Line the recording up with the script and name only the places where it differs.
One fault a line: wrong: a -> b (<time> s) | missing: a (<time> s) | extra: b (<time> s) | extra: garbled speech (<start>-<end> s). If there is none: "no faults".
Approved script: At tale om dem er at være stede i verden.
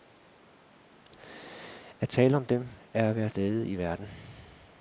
no faults